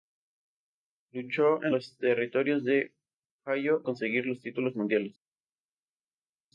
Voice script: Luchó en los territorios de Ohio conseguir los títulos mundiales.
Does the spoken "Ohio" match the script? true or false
true